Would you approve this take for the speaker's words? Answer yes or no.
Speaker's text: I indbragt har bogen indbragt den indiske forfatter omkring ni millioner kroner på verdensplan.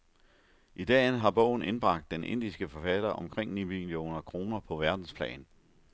no